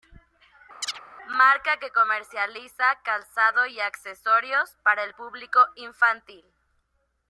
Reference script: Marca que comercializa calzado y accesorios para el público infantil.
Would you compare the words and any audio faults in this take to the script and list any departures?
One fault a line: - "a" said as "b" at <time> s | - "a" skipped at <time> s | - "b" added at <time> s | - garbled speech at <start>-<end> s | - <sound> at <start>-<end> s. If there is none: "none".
- chirp at 0.8-1.0 s